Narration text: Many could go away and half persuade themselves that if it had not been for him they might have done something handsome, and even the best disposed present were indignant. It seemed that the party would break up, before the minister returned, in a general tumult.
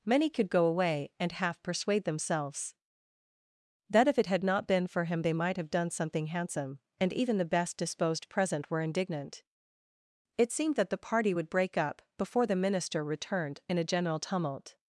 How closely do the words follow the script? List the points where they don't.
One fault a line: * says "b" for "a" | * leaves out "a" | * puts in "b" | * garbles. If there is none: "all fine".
all fine